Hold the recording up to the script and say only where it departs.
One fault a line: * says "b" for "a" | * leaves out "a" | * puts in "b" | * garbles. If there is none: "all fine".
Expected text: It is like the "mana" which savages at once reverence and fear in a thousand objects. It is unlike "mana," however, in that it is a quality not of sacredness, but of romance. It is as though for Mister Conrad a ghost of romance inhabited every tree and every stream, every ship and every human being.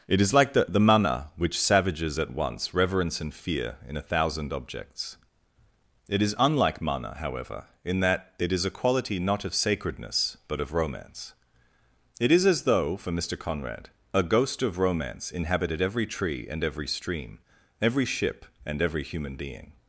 * puts in "the"